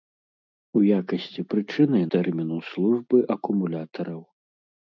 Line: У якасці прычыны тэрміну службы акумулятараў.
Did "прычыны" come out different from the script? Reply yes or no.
no